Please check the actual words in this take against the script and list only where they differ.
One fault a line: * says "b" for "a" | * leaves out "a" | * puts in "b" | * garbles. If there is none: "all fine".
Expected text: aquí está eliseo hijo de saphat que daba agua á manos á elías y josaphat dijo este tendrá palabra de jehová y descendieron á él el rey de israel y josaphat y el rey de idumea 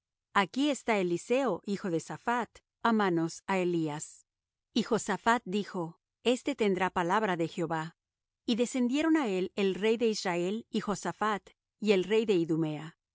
* leaves out "que daba agua"